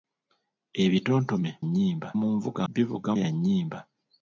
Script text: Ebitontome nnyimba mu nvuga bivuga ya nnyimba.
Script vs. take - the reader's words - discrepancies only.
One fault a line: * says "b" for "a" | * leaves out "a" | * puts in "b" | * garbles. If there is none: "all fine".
all fine